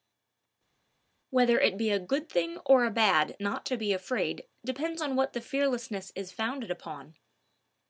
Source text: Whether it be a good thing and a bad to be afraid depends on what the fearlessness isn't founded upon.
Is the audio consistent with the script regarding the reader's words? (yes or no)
no